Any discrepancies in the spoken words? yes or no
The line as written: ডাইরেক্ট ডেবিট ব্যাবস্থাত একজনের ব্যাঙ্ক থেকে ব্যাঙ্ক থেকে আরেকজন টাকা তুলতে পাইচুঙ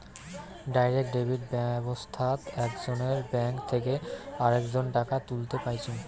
yes